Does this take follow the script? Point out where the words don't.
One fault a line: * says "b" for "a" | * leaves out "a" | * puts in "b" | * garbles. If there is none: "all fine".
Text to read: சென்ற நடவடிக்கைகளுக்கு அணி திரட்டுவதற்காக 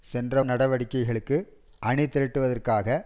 all fine